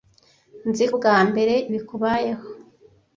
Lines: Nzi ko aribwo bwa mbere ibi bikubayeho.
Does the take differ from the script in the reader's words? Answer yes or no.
yes